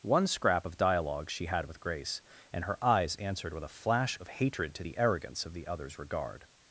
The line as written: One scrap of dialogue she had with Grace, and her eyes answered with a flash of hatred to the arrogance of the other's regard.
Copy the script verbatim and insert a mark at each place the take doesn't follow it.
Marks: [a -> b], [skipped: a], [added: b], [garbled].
One scrap of dialogue she had with Grace, and her eyes answered with a flash of hatred to the arrogance of the other's regard.